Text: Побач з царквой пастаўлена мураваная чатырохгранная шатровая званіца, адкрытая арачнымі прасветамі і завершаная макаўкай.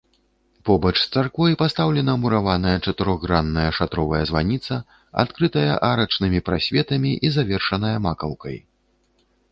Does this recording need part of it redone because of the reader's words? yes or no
no